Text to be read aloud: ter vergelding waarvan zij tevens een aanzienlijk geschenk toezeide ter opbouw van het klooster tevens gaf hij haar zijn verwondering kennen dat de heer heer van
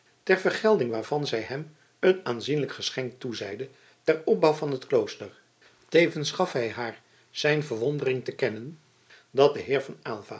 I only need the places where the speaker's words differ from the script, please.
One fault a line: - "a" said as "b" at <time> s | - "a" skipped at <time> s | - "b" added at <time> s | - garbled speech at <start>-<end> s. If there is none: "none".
- "tevens" said as "hem" at 1.4 s
- "te" added at 8.2 s
- "heer" skipped at 9.8 s